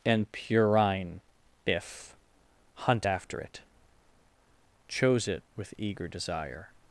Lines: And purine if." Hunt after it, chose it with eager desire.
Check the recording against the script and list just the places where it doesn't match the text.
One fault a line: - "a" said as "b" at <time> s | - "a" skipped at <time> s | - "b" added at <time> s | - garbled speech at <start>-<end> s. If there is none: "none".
none